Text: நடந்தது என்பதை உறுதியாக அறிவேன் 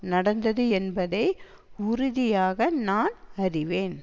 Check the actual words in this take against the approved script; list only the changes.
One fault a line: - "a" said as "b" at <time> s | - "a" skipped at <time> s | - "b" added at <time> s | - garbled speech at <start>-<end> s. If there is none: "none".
- "நான்" added at 2.7 s